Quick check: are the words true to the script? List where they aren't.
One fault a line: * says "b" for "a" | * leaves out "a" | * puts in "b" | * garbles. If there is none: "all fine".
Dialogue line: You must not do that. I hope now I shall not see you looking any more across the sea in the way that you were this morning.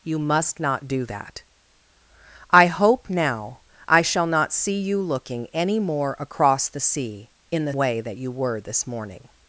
all fine